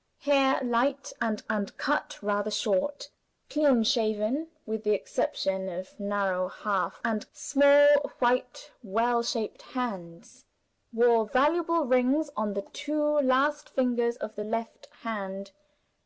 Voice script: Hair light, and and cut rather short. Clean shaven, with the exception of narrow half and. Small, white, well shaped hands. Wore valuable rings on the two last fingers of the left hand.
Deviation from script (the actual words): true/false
false